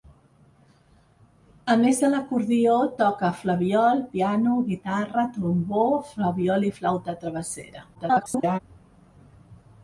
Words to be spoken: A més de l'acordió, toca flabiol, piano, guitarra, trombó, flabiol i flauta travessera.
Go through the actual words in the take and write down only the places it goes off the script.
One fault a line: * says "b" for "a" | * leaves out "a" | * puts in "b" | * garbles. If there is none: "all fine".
* garbles